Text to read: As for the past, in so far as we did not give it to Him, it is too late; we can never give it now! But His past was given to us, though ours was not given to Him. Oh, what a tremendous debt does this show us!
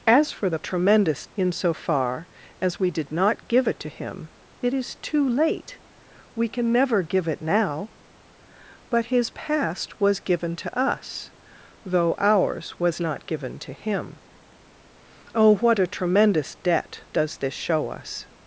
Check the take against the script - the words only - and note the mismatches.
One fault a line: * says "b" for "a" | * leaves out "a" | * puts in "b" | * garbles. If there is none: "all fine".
* says "tremendous" for "past"